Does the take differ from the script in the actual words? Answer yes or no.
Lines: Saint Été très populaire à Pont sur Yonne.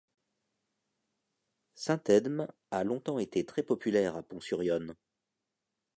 yes